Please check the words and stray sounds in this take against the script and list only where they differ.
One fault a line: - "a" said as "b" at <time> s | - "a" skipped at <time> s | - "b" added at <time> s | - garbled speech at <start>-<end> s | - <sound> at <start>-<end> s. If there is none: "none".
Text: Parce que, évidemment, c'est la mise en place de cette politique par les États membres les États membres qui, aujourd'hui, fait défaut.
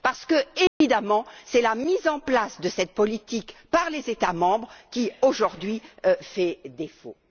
- dropout at 0.7-0.8 s
- "les États membres" skipped at 4.7 s